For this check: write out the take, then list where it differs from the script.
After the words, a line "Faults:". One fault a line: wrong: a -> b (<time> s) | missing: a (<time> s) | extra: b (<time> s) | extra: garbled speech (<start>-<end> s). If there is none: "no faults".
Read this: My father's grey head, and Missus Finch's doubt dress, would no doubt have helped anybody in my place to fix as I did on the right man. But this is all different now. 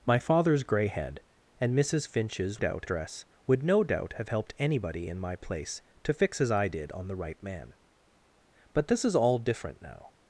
My father's grey head, and Missus Finch's doubt dress, would no doubt have helped anybody in my place to fix as I did on the right man. But this is all different now.
Faults:
no faults